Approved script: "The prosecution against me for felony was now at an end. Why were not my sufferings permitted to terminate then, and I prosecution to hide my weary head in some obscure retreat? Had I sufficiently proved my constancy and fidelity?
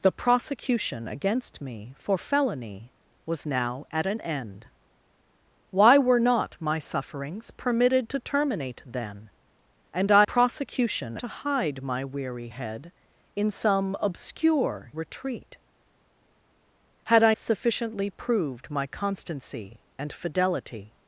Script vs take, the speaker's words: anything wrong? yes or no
no